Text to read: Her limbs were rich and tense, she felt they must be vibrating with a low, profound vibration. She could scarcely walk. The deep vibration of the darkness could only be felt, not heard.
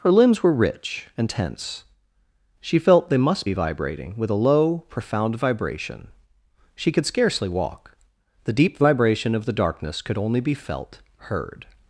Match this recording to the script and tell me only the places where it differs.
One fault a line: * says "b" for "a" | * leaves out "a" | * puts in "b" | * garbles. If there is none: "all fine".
* leaves out "not"